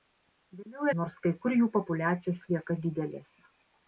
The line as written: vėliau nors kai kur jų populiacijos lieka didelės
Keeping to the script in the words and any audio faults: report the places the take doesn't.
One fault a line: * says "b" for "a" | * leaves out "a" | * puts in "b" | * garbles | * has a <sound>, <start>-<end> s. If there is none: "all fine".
all fine